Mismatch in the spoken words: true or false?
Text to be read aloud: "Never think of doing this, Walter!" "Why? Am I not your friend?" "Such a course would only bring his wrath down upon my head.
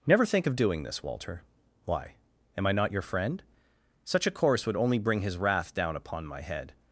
false